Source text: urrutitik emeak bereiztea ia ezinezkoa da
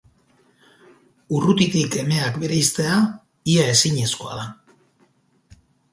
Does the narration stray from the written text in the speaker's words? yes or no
no